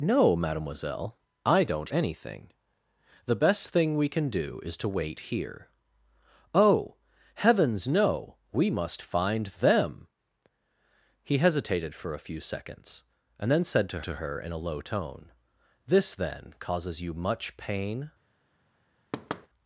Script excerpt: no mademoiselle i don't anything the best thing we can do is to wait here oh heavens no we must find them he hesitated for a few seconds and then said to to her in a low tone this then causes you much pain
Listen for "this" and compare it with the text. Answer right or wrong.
right